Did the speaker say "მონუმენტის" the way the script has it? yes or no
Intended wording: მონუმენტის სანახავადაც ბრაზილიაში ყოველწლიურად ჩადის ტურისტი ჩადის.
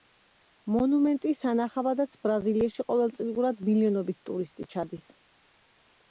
yes